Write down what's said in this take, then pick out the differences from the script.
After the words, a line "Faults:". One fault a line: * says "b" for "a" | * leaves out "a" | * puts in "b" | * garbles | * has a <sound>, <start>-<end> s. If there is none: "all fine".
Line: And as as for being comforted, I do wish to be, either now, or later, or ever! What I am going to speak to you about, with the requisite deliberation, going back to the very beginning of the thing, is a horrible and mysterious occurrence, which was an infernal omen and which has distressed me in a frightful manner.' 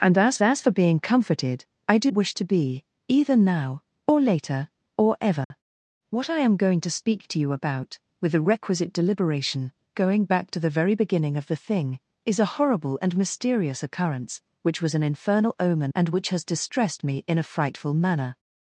And as as for being comforted, I do wish to be, either now, or later, or ever! What I am going to speak to you about, with the requisite deliberation, going back to the very beginning of the thing, is a horrible and mysterious occurrence, which was an infernal omen and which has distressed me in a frightful manner.'
Faults:
* has a dropout, 5.4-5.5 s